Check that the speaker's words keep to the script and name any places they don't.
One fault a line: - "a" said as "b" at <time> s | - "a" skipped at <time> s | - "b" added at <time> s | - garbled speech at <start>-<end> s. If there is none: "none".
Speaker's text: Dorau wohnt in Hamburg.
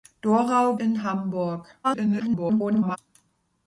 - "wohnt" skipped at 0.8 s
- garbled speech at 1.8-3.0 s